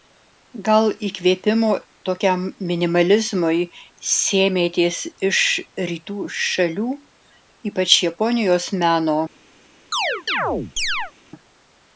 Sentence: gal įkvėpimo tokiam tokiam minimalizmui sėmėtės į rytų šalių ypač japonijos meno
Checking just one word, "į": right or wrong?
wrong